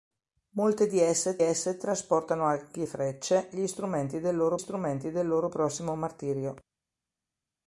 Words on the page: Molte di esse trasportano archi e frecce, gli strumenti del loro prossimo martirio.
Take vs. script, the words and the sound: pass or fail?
fail